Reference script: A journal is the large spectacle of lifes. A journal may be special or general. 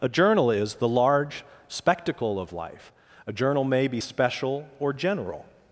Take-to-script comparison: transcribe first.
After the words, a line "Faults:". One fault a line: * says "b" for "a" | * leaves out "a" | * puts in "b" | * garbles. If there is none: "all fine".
A journal is the large spectacle of life. A journal may be special or general.
Faults:
* says "life" for "lifes"